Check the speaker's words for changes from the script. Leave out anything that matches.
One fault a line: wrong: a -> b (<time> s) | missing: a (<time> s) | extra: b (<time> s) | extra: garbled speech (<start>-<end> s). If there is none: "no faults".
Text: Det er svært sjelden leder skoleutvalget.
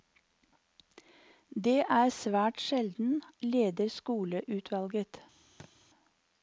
no faults